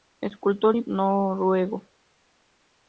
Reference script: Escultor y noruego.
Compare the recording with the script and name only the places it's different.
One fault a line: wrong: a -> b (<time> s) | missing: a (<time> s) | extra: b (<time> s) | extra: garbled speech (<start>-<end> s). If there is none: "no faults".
no faults